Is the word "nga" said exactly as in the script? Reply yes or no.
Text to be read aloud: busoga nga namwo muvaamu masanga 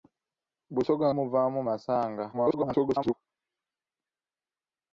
no